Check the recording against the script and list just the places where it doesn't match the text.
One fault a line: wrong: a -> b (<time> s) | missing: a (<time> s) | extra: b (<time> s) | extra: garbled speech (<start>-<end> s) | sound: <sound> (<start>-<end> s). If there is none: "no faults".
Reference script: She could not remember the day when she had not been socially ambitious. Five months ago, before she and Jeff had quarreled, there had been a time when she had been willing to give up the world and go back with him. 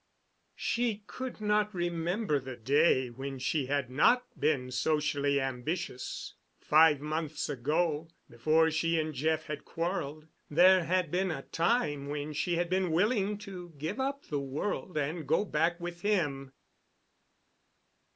no faults